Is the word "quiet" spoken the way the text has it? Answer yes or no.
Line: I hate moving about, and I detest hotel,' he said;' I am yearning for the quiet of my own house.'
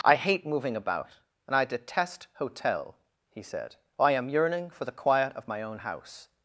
yes